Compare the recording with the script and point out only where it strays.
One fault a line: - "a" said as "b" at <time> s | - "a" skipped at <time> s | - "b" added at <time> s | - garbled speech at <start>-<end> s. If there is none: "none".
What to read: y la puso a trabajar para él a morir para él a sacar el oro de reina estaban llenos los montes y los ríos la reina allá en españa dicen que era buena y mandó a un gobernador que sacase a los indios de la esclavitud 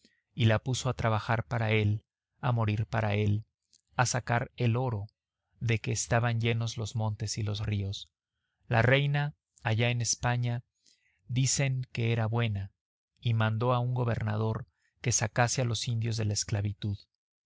- "reina" said as "que" at 5.8 s